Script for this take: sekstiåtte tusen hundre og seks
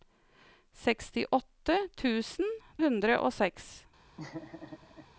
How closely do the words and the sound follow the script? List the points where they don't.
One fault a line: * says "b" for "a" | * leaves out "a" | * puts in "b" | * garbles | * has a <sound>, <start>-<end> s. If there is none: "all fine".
* has a laugh, 4.2-5.1 s